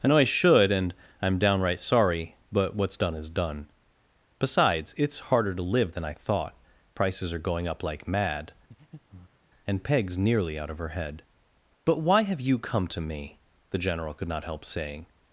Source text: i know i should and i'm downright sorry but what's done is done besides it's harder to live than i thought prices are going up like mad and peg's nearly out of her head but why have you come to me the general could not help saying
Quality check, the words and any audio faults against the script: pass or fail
fail